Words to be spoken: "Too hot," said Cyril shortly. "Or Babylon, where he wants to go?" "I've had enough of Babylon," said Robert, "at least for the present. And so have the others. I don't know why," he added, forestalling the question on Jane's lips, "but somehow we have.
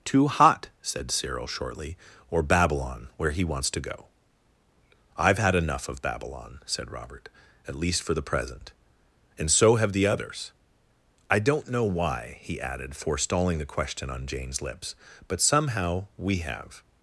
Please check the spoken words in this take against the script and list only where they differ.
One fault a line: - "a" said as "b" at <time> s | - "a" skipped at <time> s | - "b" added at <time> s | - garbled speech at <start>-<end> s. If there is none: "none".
none